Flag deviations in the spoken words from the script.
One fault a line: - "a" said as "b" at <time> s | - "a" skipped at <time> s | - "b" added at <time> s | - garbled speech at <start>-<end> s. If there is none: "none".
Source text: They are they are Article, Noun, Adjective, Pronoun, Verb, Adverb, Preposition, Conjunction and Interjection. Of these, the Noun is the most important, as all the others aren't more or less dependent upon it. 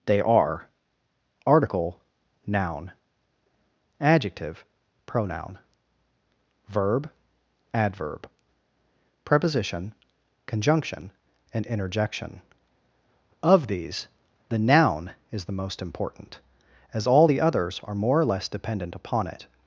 - "they are" skipped at 0.7 s
- "aren't" said as "are" at 17.8 s